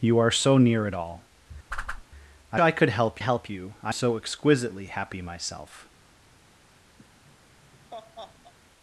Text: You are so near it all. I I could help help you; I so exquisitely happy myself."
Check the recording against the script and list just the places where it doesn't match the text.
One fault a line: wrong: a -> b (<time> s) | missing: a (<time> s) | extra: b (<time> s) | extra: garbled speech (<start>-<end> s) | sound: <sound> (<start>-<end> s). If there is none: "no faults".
sound: whoosh (1.7-2.1 s)
sound: laugh (7.0-8.5 s)